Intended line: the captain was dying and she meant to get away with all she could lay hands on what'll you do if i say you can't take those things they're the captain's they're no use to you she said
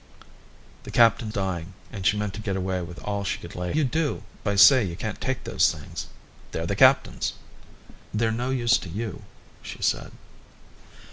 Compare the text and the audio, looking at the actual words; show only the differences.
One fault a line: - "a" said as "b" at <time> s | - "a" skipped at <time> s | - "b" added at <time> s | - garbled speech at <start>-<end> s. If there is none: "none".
- "was" skipped at 1.3 s
- "hands on what'll" skipped at 3.7 s
- "if" skipped at 4.2 s